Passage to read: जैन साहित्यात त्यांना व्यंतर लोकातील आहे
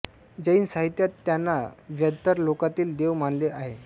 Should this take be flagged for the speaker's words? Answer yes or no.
yes